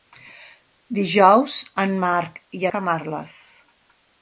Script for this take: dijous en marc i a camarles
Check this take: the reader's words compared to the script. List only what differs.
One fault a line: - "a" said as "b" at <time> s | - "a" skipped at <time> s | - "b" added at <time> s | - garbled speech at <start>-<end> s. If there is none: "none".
none